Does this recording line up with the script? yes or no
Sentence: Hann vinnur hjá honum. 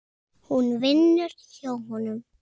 no